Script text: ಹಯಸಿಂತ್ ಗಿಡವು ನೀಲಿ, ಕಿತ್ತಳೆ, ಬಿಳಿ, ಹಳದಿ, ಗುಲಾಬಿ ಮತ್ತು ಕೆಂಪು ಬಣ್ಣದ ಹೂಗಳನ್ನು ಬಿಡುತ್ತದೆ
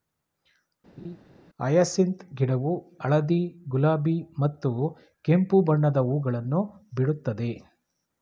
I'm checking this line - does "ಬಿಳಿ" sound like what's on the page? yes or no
no